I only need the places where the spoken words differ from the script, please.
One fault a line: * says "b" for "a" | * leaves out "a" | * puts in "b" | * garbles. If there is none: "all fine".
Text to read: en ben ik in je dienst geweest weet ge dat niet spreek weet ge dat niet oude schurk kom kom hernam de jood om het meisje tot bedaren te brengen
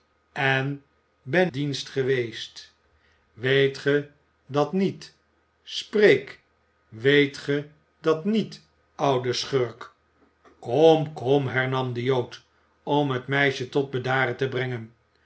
* leaves out "ik in je"